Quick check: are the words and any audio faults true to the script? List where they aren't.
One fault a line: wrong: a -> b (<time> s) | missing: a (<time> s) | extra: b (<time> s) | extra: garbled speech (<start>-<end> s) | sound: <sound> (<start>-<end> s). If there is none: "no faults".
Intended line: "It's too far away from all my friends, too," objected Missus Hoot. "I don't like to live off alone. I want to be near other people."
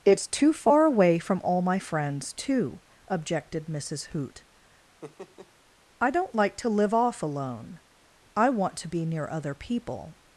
sound: laugh (5.0-5.5 s)